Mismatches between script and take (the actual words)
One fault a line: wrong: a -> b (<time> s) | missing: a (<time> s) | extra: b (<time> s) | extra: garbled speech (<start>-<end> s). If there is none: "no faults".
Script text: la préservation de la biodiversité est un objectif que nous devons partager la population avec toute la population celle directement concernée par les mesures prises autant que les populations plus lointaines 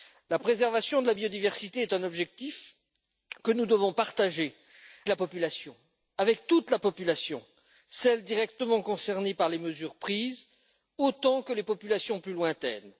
no faults